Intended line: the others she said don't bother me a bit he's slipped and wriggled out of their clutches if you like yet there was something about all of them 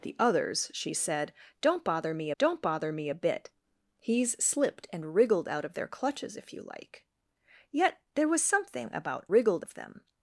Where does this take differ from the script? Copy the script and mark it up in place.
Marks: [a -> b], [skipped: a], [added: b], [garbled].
the others she said don't bother me [added: don't bother me] a bit he's slipped and wriggled out of their clutches if you like yet there was something about [all -> wriggled] of them